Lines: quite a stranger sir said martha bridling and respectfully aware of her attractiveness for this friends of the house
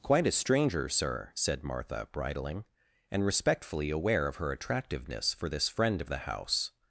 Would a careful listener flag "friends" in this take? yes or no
yes